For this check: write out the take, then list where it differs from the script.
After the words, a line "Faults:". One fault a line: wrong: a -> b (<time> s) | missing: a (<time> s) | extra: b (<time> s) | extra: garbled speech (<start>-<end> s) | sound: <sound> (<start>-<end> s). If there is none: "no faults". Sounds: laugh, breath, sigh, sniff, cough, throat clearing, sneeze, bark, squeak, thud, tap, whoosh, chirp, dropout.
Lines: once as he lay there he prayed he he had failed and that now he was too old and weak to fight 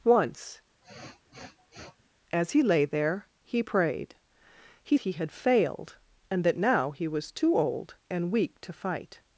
once as he lay there he prayed he he had failed and that now he was too old and weak to fight
Faults:
sound: sniff (0.8-2.1 s)